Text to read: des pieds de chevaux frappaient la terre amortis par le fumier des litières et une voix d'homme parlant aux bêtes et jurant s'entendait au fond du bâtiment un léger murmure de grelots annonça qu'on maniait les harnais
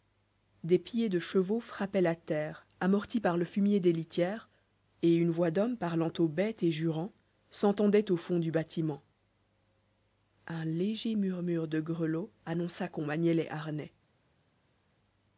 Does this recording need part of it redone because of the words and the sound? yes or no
no